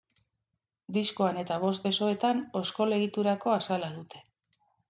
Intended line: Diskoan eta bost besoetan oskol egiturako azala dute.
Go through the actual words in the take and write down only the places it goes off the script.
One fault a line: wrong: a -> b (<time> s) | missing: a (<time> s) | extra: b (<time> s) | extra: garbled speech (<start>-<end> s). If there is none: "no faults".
no faults